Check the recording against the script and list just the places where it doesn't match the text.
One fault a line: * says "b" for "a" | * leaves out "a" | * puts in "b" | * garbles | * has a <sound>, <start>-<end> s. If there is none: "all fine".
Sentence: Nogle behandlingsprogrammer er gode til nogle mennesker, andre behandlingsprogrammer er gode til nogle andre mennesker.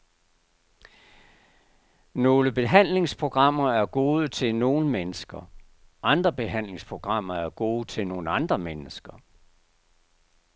all fine